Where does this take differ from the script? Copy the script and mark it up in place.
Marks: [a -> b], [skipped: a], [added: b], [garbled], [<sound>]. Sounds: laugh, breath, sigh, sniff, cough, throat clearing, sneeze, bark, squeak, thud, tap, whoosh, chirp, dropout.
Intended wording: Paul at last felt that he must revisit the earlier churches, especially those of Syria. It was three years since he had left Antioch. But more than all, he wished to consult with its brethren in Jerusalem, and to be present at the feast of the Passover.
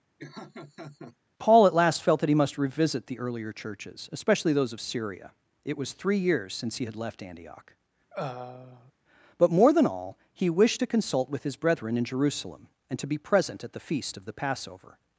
[laugh] Paul at last felt that he must revisit the earlier churches, especially those of Syria. It was three years since he had left Antioch. [throat clearing] But more than all, he wished to consult with [its -> his] brethren in Jerusalem, and to be present at the feast of the Passover.